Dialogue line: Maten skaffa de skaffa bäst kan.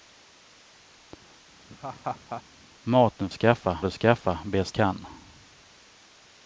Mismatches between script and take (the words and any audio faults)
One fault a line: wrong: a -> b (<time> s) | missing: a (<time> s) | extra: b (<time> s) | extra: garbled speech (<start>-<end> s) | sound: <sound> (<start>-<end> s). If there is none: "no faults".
sound: laugh (1.7-2.4 s)